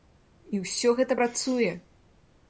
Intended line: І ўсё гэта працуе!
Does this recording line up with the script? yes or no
yes